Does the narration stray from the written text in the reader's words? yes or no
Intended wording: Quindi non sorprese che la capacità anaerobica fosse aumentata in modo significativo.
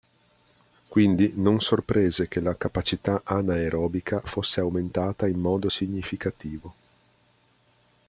no